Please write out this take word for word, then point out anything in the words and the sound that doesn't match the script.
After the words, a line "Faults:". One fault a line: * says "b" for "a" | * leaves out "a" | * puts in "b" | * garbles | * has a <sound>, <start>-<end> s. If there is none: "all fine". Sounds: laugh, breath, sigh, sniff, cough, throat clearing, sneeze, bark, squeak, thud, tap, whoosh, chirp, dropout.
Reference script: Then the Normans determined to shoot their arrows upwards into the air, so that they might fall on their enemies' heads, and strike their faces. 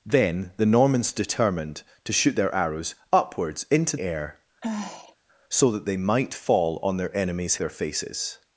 Then the Normans determined to shoot their arrows upwards into air, so that they might fall on their enemies' their faces.
Faults:
* leaves out "the"
* has a sigh, 4.6-5.2 s
* leaves out "heads and strike"